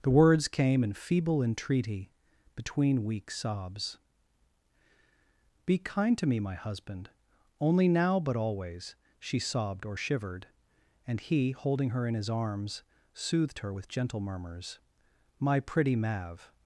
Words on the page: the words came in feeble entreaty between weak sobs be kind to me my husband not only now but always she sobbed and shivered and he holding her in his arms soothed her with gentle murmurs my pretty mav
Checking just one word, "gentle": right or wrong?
right